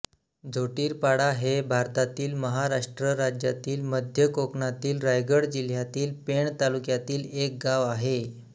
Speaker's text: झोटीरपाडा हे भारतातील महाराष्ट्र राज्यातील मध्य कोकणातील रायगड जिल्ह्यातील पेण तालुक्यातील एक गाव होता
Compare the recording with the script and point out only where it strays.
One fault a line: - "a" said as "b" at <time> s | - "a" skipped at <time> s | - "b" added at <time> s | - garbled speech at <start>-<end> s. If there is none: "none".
- "होता" said as "आहे" at 7.9 s